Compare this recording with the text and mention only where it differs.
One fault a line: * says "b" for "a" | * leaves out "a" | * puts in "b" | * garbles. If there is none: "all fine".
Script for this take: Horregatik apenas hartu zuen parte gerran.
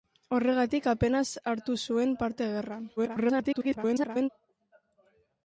* garbles